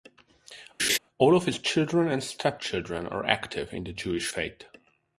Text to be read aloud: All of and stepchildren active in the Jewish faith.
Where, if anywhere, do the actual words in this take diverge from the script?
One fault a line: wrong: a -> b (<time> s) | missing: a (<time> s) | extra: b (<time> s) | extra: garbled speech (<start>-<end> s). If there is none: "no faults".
extra: his children (1.5 s)
extra: are (3.1 s)